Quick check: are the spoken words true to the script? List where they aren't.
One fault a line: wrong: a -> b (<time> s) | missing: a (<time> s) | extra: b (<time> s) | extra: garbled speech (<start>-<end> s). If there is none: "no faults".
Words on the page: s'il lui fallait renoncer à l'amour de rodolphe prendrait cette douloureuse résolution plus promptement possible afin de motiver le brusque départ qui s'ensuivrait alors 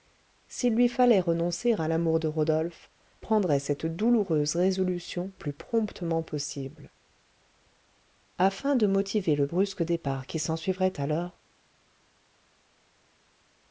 no faults